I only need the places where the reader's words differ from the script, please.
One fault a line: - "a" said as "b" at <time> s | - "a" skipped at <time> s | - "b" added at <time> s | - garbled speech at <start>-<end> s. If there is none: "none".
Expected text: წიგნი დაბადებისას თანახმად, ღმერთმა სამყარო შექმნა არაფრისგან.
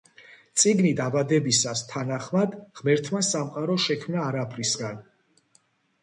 none